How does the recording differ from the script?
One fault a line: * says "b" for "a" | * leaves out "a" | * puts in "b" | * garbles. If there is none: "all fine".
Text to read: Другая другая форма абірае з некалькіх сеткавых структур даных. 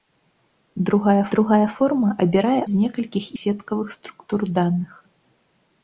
all fine